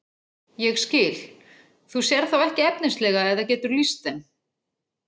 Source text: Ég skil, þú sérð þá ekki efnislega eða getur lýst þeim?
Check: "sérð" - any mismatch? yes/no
no